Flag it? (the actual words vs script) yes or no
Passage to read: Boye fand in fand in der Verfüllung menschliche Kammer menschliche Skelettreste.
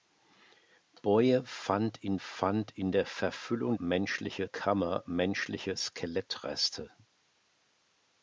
no